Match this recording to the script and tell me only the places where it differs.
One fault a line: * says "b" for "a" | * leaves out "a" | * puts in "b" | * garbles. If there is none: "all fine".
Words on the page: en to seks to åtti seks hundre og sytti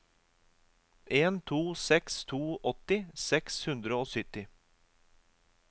all fine